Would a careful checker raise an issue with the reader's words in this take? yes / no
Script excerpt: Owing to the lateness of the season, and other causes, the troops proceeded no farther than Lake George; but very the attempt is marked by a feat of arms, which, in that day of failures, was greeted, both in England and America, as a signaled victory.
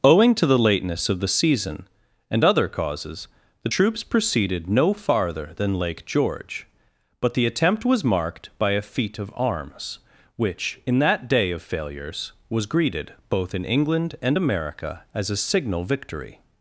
yes